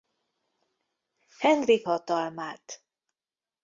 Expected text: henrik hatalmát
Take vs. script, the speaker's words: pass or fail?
pass